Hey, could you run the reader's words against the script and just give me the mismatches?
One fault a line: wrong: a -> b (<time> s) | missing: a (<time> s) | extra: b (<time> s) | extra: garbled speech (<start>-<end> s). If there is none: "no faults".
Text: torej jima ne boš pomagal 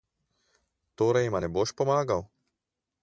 no faults